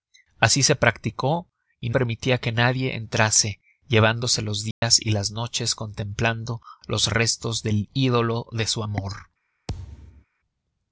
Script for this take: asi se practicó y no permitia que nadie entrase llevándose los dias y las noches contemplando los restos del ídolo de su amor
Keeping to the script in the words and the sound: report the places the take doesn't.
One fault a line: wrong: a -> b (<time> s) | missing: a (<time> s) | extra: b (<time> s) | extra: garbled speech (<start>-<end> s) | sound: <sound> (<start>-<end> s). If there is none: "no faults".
missing: no (1.9 s)
sound: dropout (4.7-4.8 s)
sound: thud (9.7-10.3 s)